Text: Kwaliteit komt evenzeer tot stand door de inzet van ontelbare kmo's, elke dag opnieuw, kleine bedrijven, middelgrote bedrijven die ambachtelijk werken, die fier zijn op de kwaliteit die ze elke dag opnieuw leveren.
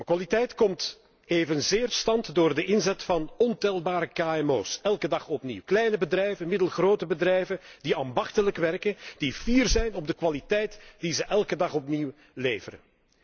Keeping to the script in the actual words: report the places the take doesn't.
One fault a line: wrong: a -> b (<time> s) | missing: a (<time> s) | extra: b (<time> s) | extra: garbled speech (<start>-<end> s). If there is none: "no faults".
missing: tot (1.9 s)